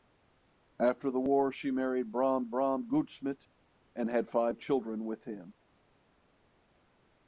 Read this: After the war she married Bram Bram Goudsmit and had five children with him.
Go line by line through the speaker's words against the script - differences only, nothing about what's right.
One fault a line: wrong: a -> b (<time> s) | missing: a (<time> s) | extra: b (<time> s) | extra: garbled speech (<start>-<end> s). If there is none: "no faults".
no faults